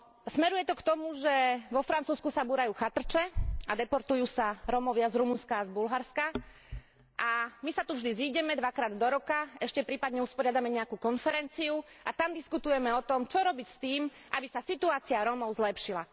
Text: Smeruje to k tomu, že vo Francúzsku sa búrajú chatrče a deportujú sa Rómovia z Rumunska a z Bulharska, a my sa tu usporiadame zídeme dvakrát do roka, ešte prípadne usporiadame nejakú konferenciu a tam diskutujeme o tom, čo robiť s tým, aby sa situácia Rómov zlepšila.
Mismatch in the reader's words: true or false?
true